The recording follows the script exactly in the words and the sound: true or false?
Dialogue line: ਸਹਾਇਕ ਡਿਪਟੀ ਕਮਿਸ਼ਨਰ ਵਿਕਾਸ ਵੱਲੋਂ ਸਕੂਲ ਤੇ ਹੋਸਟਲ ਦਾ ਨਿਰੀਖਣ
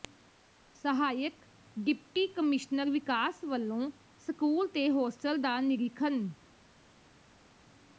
true